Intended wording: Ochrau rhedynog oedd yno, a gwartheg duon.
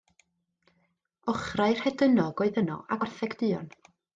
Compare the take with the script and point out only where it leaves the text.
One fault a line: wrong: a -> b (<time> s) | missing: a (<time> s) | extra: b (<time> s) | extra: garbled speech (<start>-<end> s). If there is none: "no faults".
no faults